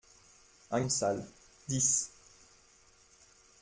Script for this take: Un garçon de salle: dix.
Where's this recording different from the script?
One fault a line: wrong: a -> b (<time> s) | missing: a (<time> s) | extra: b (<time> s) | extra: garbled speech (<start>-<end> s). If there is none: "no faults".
missing: garçon (0.8 s)